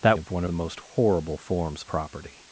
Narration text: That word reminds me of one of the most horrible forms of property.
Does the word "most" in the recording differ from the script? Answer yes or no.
no